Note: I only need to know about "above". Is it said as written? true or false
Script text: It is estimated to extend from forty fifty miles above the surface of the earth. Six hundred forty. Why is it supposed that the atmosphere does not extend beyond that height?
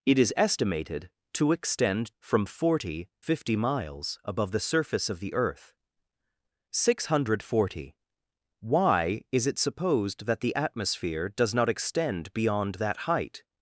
true